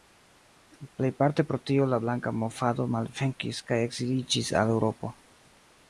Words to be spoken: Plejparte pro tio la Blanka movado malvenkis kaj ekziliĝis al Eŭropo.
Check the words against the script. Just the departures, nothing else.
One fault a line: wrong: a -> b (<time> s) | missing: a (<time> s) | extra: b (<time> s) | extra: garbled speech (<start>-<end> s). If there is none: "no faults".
no faults